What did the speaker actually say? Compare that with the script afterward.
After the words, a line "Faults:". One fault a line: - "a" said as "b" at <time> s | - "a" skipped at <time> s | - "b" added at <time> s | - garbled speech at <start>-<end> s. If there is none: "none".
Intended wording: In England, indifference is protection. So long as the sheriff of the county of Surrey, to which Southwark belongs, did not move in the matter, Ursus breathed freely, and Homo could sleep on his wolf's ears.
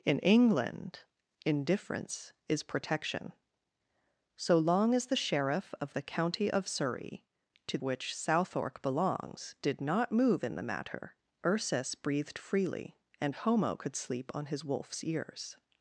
In England, indifference is protection. So long as the sheriff of the county of Surrey, to which Southwark belongs, did not move in the matter, Ursus breathed freely, and Homo could sleep on his wolf's ears.
Faults:
none